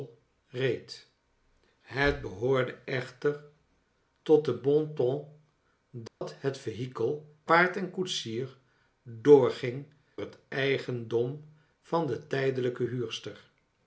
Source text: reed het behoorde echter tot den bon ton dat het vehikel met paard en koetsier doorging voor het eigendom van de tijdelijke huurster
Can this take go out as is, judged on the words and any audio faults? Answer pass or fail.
fail